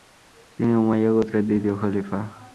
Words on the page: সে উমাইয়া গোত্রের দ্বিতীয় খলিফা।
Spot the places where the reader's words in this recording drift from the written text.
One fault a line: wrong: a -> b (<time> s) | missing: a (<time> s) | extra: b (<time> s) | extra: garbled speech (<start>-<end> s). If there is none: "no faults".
wrong: সে -> তিনি (0.6 s)